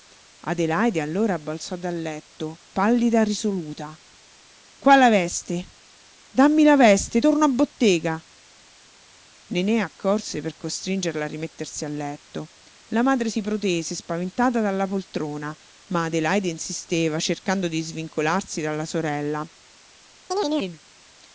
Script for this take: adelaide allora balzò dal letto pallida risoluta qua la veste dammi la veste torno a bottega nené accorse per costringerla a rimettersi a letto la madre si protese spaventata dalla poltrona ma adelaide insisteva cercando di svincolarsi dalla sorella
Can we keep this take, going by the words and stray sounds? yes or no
no